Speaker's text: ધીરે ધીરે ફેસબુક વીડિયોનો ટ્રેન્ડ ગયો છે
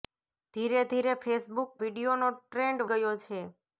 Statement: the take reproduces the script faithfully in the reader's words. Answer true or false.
true